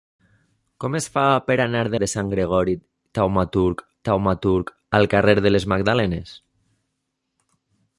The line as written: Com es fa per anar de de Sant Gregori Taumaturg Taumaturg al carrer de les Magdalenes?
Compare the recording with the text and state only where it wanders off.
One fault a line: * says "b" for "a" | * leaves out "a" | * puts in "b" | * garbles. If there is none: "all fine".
all fine